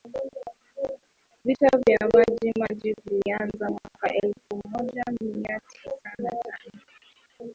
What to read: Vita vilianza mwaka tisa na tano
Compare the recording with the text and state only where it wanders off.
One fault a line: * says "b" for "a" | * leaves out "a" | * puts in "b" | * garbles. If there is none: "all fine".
* puts in "vya Maji Maji"
* puts in "elfu moja mia"